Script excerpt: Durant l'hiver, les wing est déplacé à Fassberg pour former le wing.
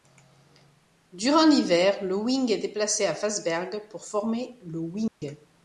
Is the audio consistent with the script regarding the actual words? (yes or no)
no